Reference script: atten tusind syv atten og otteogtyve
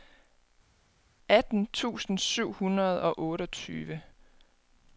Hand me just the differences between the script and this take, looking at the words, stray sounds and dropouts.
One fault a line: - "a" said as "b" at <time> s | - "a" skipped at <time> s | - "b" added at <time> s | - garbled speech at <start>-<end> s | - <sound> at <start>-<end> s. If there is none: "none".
- "atten" said as "hundrede" at 2.5 s